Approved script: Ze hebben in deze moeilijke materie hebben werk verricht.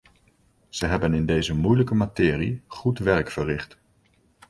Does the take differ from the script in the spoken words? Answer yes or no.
yes